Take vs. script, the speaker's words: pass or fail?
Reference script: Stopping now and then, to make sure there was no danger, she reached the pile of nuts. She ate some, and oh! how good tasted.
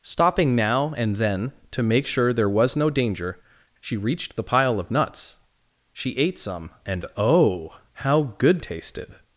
pass